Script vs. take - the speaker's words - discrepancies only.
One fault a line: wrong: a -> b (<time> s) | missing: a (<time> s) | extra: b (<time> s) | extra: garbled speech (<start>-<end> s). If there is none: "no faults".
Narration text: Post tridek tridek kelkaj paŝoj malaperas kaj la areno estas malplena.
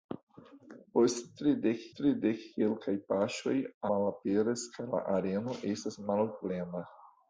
no faults